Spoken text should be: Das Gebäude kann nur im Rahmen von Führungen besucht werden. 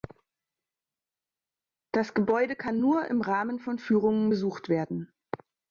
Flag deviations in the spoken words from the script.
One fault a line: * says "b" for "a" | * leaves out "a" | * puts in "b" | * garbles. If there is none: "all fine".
all fine